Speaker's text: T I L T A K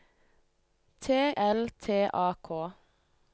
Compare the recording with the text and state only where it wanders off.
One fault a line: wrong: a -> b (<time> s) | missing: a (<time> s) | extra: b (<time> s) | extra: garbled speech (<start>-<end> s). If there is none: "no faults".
missing: I (1.1 s)